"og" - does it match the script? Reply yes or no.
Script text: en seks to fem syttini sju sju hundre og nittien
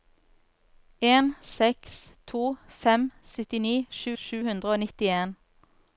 yes